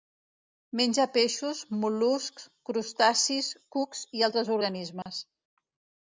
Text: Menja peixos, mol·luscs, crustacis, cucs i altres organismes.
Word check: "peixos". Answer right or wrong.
right